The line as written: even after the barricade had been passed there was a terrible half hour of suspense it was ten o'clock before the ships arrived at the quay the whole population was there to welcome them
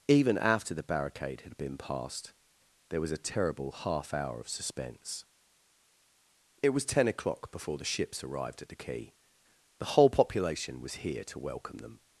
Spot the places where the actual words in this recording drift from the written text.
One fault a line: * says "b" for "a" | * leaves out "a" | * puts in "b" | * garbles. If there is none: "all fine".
* says "here" for "there"